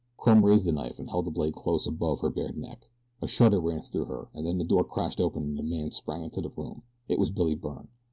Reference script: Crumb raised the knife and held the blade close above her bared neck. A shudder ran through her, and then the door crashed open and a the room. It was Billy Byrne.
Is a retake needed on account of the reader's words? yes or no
yes